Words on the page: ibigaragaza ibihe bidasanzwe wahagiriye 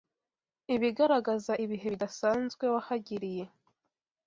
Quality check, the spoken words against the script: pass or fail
pass